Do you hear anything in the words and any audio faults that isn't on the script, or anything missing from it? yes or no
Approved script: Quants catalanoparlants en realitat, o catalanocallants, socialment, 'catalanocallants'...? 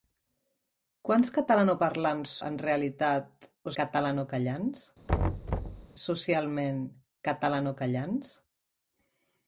yes